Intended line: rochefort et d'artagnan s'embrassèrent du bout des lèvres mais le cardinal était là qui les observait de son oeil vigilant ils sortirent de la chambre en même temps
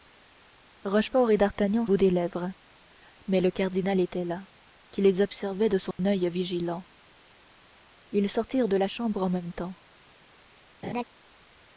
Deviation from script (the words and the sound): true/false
true